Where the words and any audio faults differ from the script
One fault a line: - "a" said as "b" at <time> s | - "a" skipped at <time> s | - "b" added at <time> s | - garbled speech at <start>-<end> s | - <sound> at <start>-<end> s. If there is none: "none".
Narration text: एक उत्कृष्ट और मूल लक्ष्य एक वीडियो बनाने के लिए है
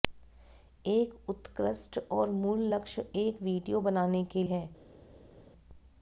- "लिए" skipped at 4.4 s